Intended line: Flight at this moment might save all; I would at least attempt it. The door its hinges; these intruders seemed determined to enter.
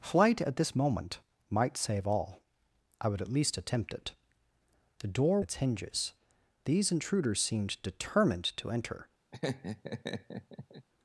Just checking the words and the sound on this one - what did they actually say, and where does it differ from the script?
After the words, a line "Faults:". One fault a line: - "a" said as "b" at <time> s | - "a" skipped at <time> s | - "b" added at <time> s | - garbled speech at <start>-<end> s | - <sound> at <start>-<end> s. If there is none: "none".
Flight at this moment might save all; I would at least attempt it. The door its hinges; these intruders seemed determined to enter.
Faults:
- laugh at 9.3-10.9 s